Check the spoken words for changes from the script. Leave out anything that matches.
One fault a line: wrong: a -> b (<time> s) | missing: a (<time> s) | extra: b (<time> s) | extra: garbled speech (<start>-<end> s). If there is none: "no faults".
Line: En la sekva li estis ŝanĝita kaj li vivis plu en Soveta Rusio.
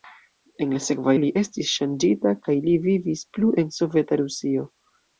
no faults